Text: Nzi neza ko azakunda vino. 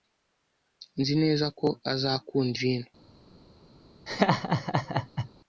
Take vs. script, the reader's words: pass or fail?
pass